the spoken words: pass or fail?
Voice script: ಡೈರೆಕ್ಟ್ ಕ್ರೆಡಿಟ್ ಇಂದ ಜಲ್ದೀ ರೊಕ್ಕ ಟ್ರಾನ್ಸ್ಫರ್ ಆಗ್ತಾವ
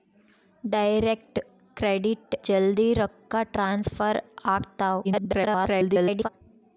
fail